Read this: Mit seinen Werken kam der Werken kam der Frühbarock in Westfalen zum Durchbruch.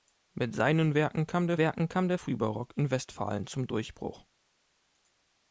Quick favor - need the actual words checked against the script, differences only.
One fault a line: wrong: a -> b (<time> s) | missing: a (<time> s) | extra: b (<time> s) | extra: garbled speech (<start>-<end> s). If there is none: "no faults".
no faults